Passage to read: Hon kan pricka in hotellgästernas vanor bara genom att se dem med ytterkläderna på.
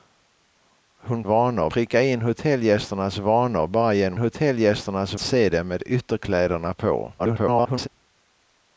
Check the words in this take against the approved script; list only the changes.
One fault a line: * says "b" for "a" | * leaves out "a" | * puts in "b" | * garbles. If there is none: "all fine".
* says "vanor" for "kan"
* says "hotellgästernas" for "att"
* garbles